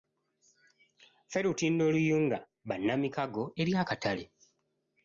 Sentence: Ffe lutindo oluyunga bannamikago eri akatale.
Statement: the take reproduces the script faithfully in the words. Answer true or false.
true